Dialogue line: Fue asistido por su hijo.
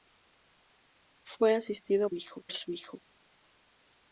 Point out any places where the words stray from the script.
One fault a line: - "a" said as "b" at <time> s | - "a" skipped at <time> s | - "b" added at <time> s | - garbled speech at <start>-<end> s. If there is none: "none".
- "por" said as "hijo" at 2.1 s